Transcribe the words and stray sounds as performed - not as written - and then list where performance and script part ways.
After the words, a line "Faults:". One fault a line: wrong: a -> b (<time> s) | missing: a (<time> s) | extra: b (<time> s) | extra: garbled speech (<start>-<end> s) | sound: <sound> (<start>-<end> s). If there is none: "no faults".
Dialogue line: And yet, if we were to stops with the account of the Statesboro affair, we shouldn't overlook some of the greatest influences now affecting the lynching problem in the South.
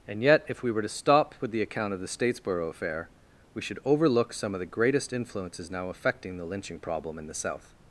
And yet, if we were to stop with the account of the Statesboro affair, we should overlook some of the greatest influences now affecting the lynching problem in the South.
Faults:
wrong: stops -> stop (0.9 s)
wrong: shouldn't -> should (3.6 s)